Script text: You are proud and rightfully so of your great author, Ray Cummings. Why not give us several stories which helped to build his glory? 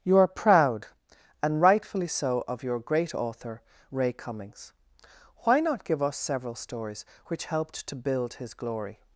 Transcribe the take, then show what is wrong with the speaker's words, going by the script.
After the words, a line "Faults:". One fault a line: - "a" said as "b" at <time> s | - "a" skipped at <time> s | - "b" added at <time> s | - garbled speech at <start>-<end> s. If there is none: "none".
You are proud and rightfully so of your great author, Ray Cummings. Why not give us several stories which helped to build his glory?
Faults:
none